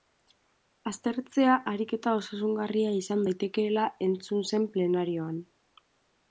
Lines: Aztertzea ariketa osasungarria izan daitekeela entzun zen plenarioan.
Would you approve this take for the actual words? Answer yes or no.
yes